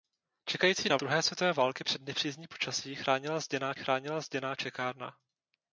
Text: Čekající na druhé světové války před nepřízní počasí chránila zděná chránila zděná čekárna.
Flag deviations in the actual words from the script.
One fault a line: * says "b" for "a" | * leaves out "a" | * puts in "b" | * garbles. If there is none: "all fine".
all fine